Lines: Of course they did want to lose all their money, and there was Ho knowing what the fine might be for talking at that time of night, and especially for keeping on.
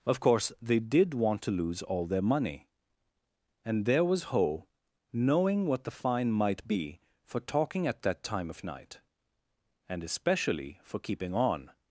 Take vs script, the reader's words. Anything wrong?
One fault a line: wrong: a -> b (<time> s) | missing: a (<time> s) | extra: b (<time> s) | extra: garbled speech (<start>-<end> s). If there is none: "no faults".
no faults